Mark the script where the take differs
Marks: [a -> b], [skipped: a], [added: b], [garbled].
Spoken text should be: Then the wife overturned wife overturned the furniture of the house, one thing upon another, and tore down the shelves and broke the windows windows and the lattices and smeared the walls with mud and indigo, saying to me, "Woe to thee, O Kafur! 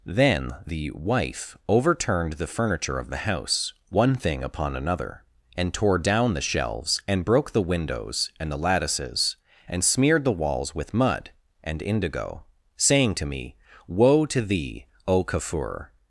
Then the wife overturned [skipped: wife overturned] the furniture of the house, one thing upon another, and tore down the shelves and broke the windows [skipped: windows] and the lattices and smeared the walls with mud and indigo, saying to me, "Woe to thee, O Kafur!